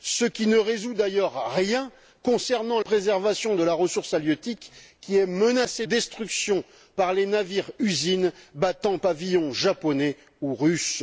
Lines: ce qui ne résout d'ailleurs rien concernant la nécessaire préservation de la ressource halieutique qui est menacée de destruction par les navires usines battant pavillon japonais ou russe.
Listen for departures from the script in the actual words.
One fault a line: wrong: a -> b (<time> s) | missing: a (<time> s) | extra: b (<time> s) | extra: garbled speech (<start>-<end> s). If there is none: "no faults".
missing: la nécessaire (2.8 s)
missing: de (5.9 s)